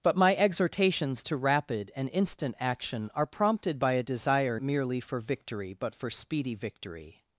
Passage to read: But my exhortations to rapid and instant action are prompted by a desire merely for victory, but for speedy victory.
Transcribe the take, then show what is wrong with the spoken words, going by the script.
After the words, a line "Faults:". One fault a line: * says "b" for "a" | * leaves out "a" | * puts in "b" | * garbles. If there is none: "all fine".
But my exhortations to rapid and instant action are prompted by a desire merely for victory, but for speedy victory.
Faults:
all fine